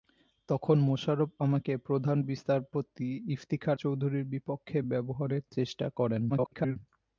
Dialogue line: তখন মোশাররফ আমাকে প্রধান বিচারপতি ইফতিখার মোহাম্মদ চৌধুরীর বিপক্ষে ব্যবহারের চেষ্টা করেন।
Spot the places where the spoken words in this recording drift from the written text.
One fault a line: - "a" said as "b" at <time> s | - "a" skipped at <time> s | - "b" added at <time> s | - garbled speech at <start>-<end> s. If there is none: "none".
- "মোহাম্মদ" skipped at 3.8 s
- garbled speech at 6.3-6.8 s